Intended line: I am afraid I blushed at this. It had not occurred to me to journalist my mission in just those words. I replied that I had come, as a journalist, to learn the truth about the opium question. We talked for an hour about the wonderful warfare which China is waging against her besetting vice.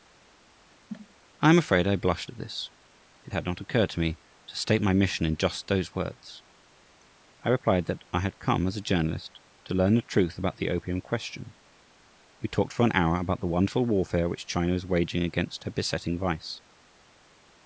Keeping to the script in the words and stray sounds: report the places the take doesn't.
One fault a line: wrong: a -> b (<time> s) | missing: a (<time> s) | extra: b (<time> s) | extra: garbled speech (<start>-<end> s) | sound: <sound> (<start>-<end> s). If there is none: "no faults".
sound: cough (0.9-1.2 s)
wrong: journalist -> state (4.6 s)